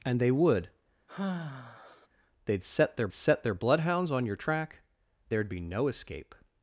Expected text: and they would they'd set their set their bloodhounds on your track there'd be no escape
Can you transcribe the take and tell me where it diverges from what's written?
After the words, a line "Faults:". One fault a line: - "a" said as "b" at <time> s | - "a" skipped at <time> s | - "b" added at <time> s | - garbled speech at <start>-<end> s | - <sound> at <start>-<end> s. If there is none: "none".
and they would they'd set their set their bloodhounds on your track there'd be no escape
Faults:
- sigh at 1.1-2.1 s